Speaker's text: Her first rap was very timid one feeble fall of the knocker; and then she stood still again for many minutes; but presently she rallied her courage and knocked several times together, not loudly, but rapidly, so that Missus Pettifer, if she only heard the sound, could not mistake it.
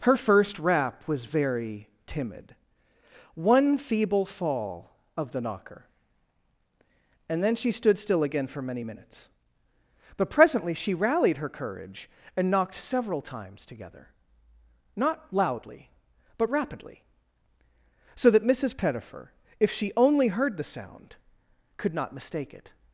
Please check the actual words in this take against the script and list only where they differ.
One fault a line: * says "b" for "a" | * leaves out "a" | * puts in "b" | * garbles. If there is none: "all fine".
all fine